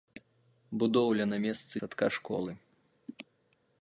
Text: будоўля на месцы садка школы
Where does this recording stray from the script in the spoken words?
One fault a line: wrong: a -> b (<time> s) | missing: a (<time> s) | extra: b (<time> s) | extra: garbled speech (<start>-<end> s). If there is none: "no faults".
no faults